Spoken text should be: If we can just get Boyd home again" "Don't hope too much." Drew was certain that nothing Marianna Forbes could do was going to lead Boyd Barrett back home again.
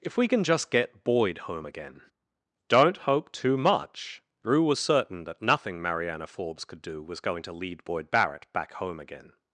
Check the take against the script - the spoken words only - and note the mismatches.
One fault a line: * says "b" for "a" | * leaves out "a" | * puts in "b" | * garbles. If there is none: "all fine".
all fine